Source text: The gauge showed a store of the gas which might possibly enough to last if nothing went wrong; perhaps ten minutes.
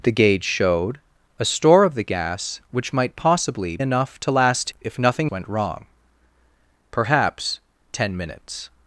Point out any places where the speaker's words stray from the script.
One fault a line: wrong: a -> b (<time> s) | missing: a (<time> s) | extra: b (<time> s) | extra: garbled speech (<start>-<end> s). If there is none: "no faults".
no faults